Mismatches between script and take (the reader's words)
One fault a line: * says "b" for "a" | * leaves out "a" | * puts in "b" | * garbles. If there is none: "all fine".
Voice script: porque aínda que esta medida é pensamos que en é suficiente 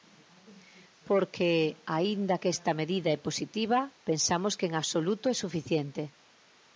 * puts in "positiva"
* puts in "absoluto"